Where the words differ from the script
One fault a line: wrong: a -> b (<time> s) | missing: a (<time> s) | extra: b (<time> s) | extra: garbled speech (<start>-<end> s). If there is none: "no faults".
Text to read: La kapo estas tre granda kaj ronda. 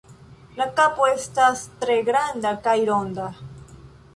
no faults